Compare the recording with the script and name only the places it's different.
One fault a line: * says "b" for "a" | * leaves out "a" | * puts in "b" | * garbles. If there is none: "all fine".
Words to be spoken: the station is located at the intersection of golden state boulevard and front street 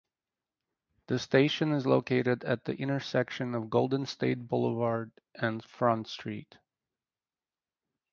all fine